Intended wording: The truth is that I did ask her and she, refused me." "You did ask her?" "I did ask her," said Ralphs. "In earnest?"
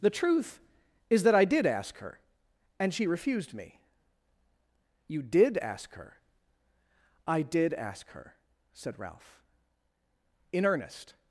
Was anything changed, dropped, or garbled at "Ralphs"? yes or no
yes